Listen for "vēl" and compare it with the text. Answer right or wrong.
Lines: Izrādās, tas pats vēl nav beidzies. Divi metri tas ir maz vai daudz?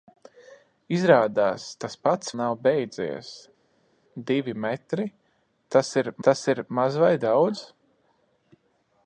wrong